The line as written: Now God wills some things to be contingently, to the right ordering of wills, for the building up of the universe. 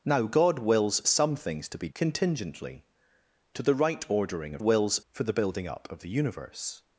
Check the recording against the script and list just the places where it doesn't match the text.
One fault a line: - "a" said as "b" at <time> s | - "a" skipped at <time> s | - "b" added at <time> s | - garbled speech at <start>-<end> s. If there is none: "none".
none